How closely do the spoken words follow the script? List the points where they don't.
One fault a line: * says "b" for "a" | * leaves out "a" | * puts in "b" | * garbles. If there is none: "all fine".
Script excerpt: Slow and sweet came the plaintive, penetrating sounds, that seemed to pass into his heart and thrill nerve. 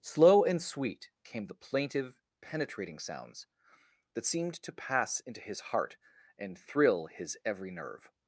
* puts in "his every"